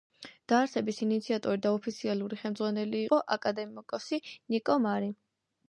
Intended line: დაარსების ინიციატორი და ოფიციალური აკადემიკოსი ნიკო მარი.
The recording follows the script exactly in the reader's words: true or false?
false